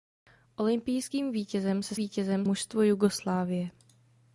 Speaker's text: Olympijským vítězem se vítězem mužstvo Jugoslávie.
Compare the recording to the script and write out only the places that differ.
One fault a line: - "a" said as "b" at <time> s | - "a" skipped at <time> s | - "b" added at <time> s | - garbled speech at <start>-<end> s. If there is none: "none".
none